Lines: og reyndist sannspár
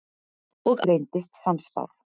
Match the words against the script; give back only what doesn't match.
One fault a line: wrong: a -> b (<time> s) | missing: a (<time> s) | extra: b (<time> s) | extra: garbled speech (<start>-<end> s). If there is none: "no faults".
no faults